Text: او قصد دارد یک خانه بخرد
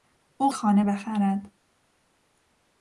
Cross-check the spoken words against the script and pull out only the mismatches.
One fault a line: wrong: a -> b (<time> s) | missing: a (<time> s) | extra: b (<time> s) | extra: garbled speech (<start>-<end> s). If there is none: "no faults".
missing: قصد دارد یک (0.5 s)